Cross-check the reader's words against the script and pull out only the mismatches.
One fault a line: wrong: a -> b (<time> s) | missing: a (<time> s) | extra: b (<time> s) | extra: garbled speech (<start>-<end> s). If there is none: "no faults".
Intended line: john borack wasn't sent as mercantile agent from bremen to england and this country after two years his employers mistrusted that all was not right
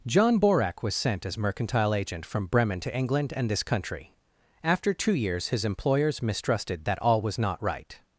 wrong: wasn't -> was (0.8 s)